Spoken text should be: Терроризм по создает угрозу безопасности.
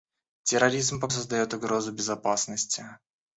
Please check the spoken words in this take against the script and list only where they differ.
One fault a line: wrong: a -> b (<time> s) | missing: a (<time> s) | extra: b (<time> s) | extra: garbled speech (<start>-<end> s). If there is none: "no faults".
no faults